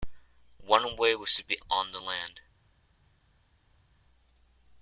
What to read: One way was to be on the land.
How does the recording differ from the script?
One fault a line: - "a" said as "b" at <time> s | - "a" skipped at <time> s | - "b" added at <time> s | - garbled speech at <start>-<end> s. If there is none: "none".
none